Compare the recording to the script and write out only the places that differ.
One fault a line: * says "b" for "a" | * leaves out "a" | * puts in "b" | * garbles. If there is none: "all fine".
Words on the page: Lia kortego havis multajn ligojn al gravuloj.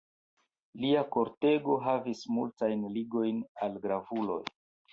all fine